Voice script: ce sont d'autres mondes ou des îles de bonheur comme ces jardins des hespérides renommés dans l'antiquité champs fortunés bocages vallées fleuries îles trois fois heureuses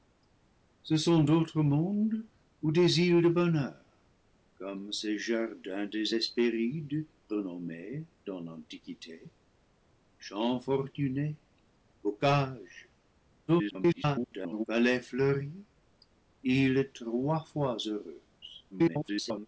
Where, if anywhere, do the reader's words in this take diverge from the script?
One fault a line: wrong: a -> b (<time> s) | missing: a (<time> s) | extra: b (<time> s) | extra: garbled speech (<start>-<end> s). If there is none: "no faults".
extra: garbled speech (13.5-14.7 s)
extra: garbled speech (18.7-19.5 s)